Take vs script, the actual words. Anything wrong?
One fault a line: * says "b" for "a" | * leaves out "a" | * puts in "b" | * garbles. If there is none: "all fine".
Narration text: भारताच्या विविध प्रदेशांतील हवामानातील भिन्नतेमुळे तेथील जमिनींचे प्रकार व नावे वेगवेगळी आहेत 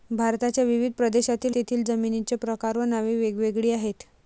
* leaves out "हवामानातील भिन्नतेमुळे"